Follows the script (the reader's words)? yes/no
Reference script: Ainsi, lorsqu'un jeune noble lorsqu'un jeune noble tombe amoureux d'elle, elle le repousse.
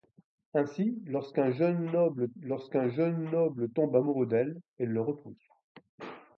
yes